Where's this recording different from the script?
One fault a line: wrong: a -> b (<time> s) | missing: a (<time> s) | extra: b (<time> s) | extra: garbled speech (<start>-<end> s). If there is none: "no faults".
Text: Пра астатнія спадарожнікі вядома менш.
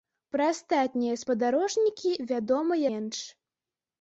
no faults